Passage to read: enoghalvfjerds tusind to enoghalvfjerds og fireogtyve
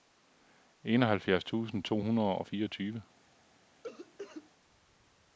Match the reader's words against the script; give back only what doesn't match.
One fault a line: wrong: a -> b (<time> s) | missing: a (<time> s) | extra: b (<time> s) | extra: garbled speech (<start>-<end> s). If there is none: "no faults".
wrong: enoghalvfjerds -> hundrede (2.0 s)